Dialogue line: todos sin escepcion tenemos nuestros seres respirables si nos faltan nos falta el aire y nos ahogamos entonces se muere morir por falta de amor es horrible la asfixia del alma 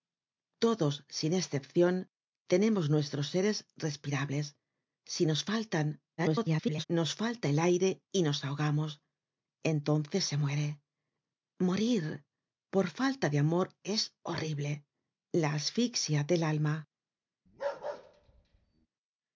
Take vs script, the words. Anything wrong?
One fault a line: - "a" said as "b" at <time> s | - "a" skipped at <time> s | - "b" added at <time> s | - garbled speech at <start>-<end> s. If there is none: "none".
- garbled speech at 6.2-6.8 s